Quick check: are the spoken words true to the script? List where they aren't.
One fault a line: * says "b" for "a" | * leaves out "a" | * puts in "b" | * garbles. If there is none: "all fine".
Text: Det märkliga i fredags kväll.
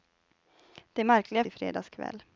all fine